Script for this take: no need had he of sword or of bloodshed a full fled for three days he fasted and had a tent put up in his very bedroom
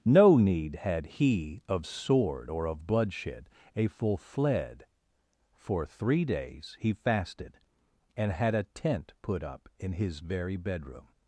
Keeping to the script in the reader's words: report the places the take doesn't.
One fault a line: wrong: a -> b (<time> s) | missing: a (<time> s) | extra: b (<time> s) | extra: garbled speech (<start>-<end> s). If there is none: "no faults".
no faults